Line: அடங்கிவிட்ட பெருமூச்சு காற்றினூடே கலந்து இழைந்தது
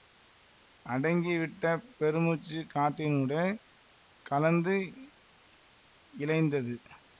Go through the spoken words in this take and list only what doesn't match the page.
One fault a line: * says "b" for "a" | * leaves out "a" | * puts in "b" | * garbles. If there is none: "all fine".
all fine